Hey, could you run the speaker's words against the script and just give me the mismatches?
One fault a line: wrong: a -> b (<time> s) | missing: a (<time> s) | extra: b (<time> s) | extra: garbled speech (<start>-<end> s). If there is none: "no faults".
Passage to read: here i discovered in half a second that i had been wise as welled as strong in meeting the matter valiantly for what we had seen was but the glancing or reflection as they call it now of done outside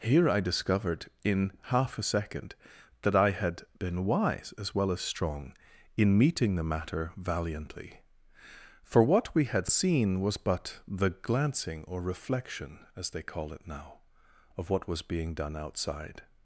wrong: welled -> well (4.7 s)
extra: what was being (14.7 s)